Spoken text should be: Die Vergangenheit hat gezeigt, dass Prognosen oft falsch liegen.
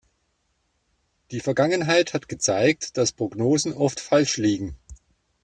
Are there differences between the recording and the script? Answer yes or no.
no